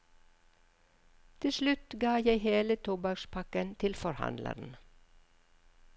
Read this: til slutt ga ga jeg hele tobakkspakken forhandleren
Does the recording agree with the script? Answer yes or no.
no